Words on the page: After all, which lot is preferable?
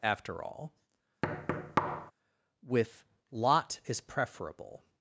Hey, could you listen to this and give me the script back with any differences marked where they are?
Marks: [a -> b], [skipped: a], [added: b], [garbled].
After all, [which -> with] lot is preferable?